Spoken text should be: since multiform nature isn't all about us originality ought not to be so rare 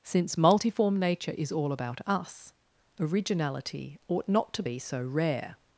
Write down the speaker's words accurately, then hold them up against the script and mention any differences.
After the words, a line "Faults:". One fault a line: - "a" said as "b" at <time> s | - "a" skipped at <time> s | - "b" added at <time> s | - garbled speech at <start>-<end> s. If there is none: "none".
since multiform nature is all about us originality ought not to be so rare
Faults:
- "isn't" said as "is" at 1.4 s